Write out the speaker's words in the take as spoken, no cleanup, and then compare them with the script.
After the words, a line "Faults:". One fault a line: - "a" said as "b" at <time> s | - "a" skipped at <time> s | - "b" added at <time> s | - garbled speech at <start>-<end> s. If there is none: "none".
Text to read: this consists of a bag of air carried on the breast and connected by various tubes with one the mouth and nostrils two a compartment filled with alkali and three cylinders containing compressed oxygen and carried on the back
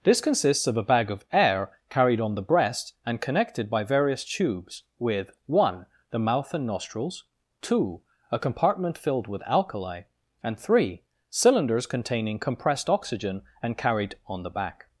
this consists of a bag of air carried on the breast and connected by various tubes with one the mouth and nostrils two a compartment filled with alkali and three cylinders containing compressed oxygen and carried on the back
Faults:
none